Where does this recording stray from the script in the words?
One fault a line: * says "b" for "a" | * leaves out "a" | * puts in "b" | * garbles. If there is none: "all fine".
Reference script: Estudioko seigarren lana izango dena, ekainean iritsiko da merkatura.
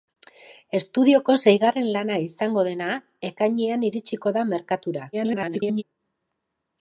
* garbles